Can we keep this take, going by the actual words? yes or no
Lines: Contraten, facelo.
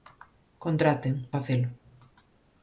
yes